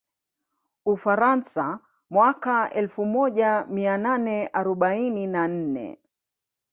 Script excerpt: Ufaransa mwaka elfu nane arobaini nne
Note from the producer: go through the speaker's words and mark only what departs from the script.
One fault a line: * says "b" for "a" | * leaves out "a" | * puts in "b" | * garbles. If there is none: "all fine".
* puts in "moja mia"
* puts in "na"